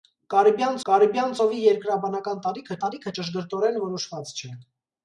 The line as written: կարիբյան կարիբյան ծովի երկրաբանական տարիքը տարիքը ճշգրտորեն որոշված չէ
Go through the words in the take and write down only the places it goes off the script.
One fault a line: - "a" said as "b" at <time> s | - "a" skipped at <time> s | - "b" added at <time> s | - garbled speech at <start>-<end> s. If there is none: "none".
none